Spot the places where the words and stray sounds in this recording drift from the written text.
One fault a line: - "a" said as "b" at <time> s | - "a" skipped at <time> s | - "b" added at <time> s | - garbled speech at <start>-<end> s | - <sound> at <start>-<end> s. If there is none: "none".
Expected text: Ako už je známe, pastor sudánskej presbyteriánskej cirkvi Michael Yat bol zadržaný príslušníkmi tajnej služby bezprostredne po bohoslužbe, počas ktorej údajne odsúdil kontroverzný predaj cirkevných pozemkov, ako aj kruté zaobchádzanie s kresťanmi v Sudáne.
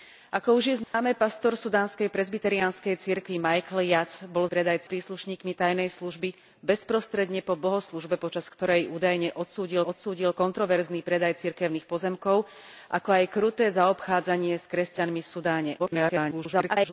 - dropout at 0.8-0.9 s
- "zadržaný" said as "predaj" at 4.4 s
- "odsúdil" added at 9.8 s
- garbled speech at 15.8-16.9 s